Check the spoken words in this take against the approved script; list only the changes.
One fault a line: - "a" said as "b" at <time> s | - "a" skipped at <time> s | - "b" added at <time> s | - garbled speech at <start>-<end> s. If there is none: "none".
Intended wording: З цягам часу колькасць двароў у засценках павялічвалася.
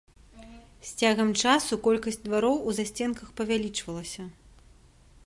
none